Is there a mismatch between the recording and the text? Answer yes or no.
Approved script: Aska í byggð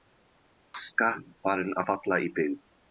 yes